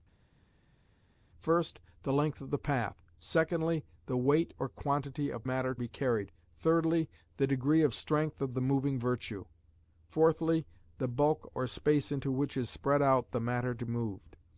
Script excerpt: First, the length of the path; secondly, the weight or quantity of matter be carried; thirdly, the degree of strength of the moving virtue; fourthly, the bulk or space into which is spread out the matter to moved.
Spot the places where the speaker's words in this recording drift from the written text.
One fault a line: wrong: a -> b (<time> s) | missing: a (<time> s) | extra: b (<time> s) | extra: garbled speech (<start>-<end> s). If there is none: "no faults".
no faults